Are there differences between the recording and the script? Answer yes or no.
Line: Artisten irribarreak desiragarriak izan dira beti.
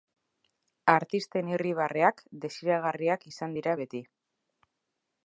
no